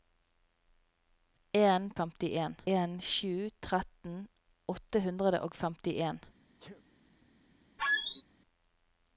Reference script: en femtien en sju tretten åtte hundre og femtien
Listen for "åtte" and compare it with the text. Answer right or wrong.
right